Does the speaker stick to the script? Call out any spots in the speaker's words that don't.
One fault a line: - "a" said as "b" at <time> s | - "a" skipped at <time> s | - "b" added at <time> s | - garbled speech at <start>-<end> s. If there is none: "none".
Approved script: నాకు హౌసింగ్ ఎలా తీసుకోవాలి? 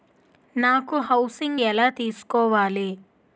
none